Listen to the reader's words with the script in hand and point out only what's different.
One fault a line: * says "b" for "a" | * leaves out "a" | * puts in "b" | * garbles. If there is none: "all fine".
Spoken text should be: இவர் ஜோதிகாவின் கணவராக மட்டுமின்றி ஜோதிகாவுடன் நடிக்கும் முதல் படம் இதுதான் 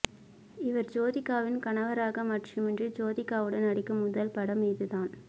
all fine